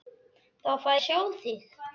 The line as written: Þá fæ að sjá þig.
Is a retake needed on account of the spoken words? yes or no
no